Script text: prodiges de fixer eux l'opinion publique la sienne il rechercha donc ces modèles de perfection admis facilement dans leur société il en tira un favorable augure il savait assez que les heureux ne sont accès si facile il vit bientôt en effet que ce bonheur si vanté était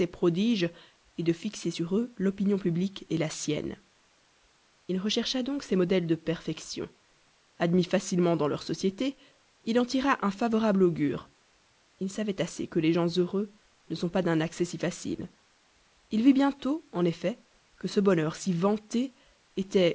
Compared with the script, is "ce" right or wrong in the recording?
right